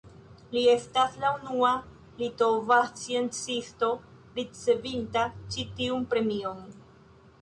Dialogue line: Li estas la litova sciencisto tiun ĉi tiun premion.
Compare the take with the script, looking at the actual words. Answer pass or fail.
fail